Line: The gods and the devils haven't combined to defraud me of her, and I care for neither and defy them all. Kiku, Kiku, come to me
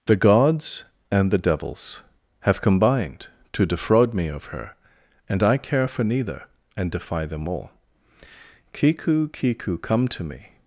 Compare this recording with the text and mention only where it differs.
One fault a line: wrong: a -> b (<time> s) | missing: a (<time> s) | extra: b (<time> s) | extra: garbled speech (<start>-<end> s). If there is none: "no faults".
wrong: haven't -> have (2.4 s)